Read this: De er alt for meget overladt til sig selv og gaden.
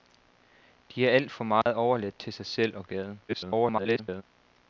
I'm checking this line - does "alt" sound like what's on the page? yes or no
yes